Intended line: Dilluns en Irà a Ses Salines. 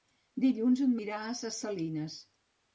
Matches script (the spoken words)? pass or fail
pass